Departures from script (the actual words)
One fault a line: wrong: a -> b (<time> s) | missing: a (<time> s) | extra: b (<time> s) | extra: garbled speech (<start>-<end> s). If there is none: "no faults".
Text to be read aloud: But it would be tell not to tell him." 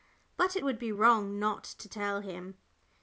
wrong: tell -> wrong (0.9 s)